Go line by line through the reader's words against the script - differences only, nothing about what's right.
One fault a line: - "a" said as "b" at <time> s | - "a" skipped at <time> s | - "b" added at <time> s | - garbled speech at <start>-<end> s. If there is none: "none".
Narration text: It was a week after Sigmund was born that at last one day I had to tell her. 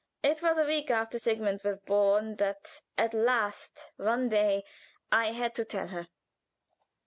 none